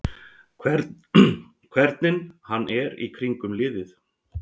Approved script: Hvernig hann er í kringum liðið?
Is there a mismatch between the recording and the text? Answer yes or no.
no